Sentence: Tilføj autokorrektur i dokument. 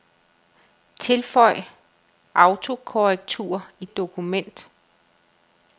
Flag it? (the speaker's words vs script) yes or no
no